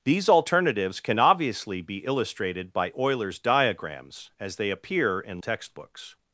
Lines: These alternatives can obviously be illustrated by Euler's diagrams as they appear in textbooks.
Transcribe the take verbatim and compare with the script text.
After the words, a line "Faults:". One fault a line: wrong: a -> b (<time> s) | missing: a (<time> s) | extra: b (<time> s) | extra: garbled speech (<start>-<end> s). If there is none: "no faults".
These alternatives can obviously be illustrated by Euler's diagrams as they appear in textbooks.
Faults:
no faults